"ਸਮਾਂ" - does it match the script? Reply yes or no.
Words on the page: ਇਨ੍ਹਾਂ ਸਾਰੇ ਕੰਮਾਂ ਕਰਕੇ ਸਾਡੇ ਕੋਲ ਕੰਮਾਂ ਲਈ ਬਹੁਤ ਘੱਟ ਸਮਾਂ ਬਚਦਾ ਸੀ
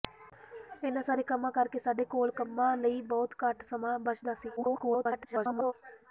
yes